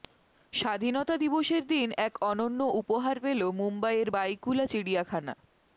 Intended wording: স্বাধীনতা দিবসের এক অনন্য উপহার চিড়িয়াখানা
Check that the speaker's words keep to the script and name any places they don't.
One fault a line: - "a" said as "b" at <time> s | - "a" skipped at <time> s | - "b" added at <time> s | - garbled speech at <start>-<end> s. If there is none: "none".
- "দিন" added at 1.7 s
- "পেল মুম্বইয়ের বাইকুলা" added at 3.2 s